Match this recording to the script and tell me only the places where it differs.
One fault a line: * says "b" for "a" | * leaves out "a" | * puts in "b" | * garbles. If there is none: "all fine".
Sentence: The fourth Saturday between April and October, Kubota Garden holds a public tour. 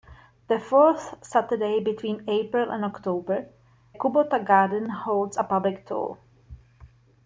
all fine